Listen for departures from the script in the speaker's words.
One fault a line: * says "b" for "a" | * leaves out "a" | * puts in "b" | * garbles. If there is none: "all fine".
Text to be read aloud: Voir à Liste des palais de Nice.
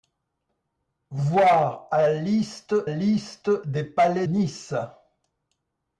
* puts in "Liste"
* leaves out "de"